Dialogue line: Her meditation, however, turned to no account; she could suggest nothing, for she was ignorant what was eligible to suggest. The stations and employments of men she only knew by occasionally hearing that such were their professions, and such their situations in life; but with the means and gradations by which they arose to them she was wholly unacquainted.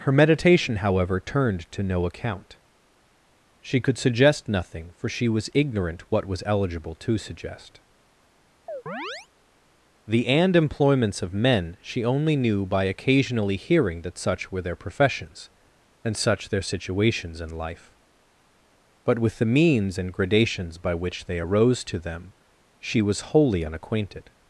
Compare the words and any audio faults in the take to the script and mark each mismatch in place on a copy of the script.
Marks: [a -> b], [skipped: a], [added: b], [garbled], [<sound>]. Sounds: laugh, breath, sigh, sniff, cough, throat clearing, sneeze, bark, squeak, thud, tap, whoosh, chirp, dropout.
Her meditation, however, turned to no account; she could suggest nothing, for she was ignorant what was eligible to suggest. [chirp] The [skipped: stations] and employments of men she only knew by occasionally hearing that such were their professions, and such their situations in life; but with the means and gradations by which they arose to them she was wholly unacquainted.